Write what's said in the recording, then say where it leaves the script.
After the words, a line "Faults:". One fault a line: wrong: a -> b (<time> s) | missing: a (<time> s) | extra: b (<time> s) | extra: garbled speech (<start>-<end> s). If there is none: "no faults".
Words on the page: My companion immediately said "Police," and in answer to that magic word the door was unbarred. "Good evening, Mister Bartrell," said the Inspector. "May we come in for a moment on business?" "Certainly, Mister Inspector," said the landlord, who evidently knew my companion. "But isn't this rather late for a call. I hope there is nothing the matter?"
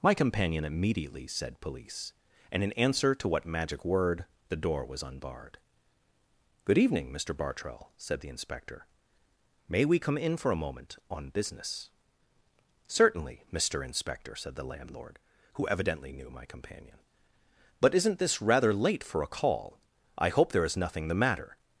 My companion immediately said "Police," and in answer to what magic word the door was unbarred. "Good evening, Mister Bartrell," said the Inspector. "May we come in for a moment on business?" "Certainly, Mister Inspector," said the landlord, who evidently knew my companion. "But isn't this rather late for a call. I hope there is nothing the matter?"
Faults:
wrong: that -> what (3.3 s)